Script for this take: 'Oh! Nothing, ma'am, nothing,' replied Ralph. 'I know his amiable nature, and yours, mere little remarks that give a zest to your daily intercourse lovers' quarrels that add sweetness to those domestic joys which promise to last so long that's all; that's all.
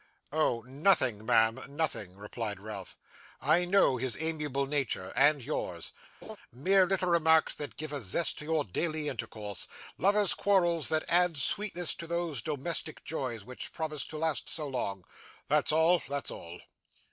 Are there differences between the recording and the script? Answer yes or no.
no